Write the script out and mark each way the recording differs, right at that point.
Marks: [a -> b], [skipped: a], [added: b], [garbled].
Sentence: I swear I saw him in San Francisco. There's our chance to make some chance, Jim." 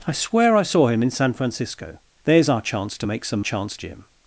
I swear I saw him in San Francisco. There's our chance to make some chance, Jim."